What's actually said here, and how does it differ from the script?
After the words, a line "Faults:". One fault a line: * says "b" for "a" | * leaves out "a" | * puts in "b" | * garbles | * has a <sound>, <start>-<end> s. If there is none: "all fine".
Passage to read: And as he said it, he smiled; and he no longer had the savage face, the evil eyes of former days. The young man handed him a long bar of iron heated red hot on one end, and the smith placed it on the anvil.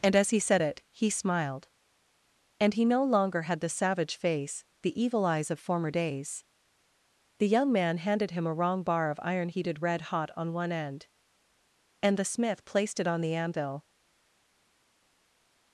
And as he said it, he smiled; and he no longer had the savage face, the evil eyes of former days. The young man handed him a wrong bar of iron heated red hot on one end, and the smith placed it on the anvil.
Faults:
* says "wrong" for "long"